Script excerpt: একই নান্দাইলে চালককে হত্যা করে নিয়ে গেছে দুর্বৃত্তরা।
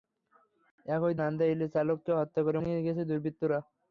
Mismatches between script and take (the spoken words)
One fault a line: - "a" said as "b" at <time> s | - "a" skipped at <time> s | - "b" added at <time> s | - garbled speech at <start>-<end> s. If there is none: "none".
none